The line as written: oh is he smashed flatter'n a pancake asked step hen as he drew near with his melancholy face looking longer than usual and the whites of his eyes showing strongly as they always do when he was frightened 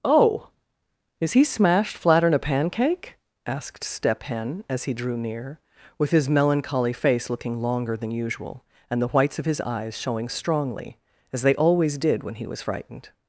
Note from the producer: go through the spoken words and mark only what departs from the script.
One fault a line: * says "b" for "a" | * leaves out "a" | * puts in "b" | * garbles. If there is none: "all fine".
* says "did" for "do"